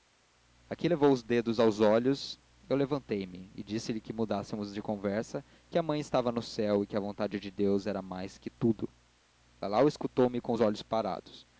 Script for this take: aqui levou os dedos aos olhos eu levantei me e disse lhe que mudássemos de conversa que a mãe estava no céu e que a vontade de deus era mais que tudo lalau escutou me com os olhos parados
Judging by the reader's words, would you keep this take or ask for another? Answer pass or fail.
pass